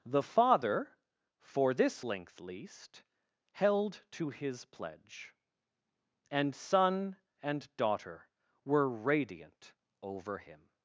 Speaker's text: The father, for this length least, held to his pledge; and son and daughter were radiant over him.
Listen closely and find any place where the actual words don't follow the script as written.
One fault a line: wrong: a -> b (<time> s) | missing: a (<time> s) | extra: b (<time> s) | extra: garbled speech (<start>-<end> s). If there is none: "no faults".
no faults